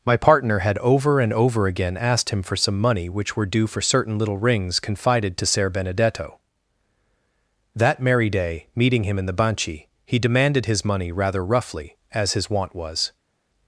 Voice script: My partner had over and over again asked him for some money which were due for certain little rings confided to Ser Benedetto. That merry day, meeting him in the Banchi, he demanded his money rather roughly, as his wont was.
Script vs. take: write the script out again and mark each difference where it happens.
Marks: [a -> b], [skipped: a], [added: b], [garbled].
My partner had over and over again asked him for some money which were due for certain little rings confided to Ser Benedetto. That merry day, meeting him in the Banchi, he demanded his money rather roughly, as his wont was.